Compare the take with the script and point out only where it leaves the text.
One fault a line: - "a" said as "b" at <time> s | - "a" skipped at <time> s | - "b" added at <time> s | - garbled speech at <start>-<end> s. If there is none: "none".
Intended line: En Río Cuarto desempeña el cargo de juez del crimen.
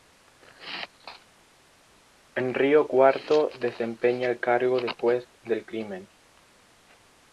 none